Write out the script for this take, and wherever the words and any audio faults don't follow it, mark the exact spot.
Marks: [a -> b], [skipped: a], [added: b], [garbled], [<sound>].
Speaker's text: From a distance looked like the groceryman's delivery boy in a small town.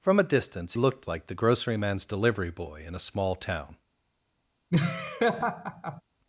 From a distance looked like the groceryman's delivery boy in a small town. [laugh]